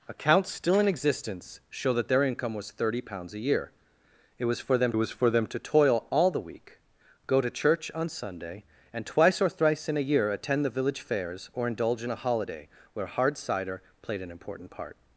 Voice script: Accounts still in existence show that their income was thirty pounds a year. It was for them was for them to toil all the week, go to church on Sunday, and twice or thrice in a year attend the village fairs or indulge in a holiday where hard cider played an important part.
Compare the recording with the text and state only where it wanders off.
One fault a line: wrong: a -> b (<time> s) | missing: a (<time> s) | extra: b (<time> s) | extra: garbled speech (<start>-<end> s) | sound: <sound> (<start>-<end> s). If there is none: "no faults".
no faults